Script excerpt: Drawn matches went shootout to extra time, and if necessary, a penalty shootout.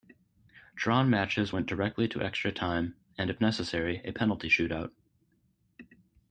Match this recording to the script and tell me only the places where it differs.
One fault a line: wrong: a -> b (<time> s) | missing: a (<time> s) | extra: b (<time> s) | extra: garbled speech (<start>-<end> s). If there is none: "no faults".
wrong: shootout -> directly (1.7 s)